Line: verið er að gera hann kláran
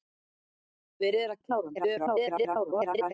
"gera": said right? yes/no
no